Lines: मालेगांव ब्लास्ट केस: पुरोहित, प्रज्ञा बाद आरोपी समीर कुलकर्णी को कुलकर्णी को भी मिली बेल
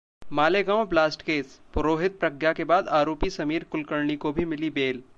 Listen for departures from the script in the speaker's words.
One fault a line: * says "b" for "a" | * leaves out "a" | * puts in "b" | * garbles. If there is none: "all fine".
* puts in "के"
* leaves out "कुलकर्णी को"